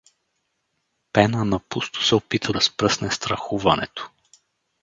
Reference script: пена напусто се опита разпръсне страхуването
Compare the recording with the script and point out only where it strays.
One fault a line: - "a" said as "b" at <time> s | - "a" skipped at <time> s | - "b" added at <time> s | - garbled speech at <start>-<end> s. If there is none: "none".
none